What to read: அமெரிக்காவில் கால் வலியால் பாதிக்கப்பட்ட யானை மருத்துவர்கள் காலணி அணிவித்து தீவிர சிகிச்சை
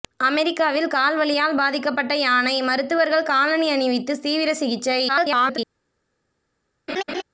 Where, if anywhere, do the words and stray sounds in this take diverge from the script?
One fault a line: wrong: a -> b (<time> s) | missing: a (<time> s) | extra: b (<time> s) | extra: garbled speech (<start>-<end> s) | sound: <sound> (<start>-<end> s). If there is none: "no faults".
extra: garbled speech (5.1-5.6 s)
sound: laugh (6.9-7.2 s)